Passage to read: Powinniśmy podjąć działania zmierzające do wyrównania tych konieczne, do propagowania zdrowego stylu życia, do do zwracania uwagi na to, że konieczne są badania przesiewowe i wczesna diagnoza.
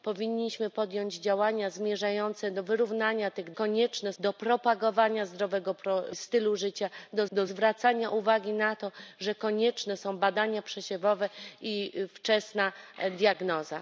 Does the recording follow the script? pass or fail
pass